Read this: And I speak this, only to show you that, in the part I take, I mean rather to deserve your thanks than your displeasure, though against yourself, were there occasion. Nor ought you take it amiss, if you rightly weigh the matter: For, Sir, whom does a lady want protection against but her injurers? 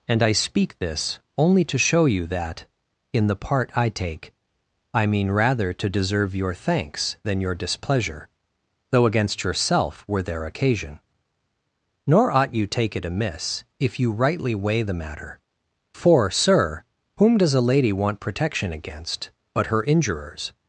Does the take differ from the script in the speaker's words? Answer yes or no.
no